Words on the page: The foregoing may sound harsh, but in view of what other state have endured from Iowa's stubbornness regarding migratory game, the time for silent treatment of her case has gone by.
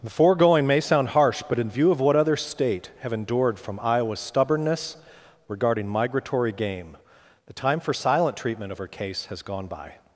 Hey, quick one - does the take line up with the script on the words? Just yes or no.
yes